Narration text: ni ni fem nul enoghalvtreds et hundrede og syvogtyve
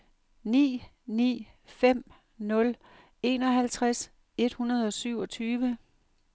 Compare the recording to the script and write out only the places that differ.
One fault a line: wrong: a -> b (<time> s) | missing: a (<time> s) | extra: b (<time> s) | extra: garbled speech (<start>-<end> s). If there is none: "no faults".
no faults